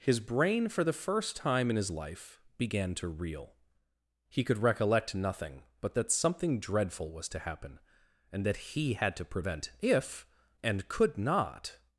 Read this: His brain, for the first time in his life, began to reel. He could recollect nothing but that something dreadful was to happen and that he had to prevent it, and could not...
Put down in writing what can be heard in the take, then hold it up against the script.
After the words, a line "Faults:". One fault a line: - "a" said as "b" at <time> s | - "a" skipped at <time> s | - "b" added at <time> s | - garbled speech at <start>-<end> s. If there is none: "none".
His brain, for the first time in his life, began to reel. He could recollect nothing but that something dreadful was to happen and that he had to prevent if, and could not...
Faults:
- "it" said as "if" at 9.8 s